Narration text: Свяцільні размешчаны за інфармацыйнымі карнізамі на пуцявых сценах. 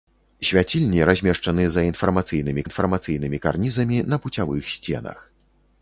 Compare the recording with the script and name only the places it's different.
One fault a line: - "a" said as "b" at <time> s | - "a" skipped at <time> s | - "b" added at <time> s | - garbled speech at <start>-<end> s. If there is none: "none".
- "інфармацыйнымі" added at 2.7 s